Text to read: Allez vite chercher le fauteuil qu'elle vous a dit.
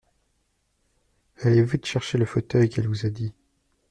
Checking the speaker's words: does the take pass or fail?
pass